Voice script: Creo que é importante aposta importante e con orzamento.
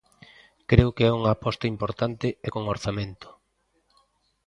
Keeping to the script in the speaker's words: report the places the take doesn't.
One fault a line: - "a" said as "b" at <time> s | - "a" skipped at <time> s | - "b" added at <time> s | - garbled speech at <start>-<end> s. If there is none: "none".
- "importante" said as "unha" at 1.2 s